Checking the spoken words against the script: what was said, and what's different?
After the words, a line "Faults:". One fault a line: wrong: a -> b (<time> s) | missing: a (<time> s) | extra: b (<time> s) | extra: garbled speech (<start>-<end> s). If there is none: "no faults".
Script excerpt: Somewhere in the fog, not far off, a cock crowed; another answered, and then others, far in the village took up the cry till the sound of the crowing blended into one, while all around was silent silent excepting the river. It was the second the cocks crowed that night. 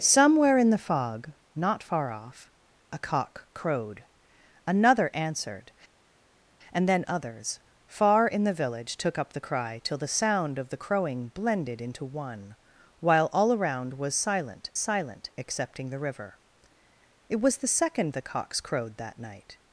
Somewhere in the fog, not far off, a cock crowed; another answered, and then others, far in the village took up the cry till the sound of the crowing blended into one, while all around was silent silent excepting the river. It was the second the cocks crowed that night.
Faults:
no faults